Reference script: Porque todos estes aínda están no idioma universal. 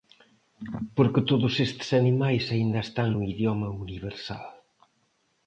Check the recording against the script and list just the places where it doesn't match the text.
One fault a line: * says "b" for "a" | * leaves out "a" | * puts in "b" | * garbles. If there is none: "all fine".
* puts in "animais"